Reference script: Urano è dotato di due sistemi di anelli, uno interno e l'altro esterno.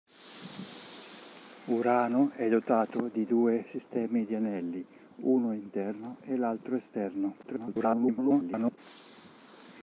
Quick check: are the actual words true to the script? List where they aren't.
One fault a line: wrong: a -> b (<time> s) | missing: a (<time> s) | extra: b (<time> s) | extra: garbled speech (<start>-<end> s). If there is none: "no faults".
extra: garbled speech (7.4-8.8 s)